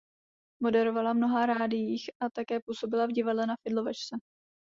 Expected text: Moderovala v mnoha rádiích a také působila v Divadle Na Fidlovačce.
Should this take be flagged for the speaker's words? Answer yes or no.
no